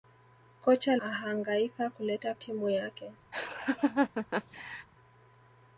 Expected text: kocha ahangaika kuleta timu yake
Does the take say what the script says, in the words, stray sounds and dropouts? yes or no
no